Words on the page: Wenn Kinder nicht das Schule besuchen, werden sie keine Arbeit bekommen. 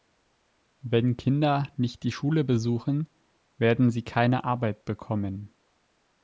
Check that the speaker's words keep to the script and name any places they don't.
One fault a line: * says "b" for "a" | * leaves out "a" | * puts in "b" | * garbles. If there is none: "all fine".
* says "die" for "das"